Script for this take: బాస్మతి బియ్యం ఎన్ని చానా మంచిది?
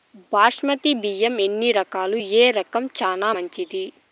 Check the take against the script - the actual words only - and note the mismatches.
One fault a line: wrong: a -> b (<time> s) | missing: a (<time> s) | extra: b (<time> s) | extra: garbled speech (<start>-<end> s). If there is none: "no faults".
extra: రకాలు ఏ రకం (1.7 s)